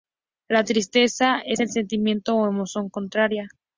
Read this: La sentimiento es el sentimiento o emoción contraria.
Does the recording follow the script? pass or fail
fail